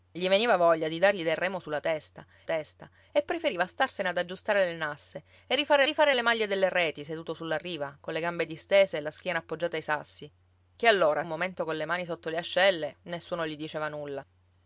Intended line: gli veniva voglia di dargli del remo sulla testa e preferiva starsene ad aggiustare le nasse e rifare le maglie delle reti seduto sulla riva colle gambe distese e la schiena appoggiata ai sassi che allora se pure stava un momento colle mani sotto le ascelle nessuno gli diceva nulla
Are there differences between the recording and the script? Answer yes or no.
yes